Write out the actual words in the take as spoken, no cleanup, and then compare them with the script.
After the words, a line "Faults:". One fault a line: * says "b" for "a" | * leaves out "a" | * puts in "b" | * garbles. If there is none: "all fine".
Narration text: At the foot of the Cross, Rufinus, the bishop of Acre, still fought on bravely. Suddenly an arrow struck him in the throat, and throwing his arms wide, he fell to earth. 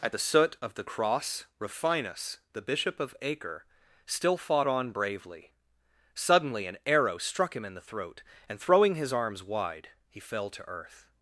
At the soot of the Cross, Rufinus, the bishop of Acre, still fought on bravely. Suddenly an arrow struck him in the throat, and throwing his arms wide, he fell to earth.
Faults:
* says "soot" for "foot"